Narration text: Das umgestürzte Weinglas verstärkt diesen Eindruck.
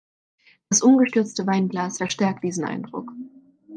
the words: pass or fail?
pass